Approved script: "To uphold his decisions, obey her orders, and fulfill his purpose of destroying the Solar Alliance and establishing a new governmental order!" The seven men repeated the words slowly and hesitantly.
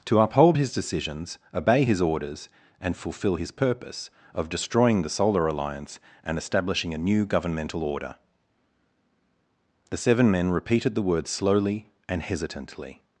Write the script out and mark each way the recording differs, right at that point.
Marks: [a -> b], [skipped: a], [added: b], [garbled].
"To uphold his decisions, obey [her -> his] orders, and fulfill his purpose of destroying the Solar Alliance and establishing a new governmental order!" The seven men repeated the words slowly and hesitantly.